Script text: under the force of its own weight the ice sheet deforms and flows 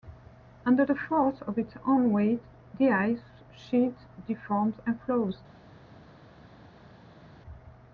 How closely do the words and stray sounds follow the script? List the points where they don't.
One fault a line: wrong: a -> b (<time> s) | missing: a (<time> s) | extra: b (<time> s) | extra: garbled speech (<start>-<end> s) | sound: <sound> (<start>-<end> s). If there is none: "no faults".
no faults